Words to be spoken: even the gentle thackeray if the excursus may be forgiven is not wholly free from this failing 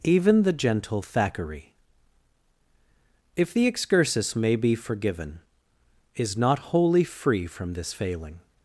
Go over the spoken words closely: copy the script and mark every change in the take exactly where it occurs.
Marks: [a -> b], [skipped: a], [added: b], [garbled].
even the gentle thackeray if the excursus may be forgiven is not wholly free from this failing